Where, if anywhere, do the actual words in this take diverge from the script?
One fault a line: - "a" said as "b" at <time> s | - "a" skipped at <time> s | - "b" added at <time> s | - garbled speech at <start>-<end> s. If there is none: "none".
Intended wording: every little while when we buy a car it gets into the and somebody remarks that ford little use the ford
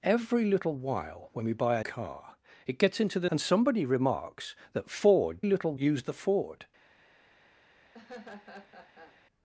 none